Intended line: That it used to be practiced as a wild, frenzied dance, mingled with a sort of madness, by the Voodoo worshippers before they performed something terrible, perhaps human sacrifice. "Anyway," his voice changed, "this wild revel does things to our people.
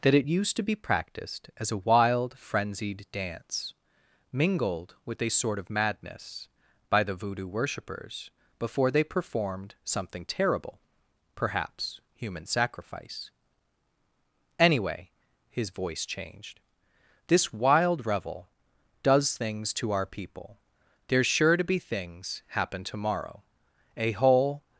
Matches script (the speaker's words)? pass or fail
fail